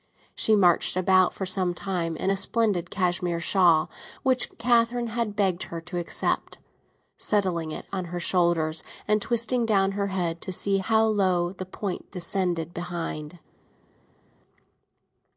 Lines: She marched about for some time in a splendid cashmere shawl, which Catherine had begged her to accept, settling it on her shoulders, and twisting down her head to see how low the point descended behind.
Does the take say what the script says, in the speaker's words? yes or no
yes